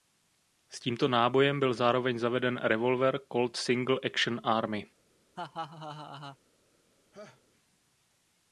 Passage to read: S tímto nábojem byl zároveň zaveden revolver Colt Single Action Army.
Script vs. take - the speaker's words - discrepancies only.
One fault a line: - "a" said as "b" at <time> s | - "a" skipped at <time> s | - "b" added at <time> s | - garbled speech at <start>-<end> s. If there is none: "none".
none